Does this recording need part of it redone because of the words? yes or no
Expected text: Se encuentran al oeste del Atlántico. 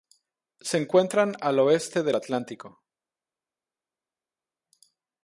no